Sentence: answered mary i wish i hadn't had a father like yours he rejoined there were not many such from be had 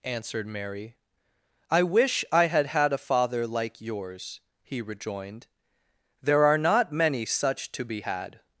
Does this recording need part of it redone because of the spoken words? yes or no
yes